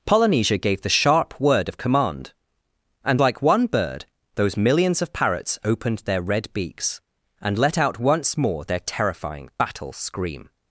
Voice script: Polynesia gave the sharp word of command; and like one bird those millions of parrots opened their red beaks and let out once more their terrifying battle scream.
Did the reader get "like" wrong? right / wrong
right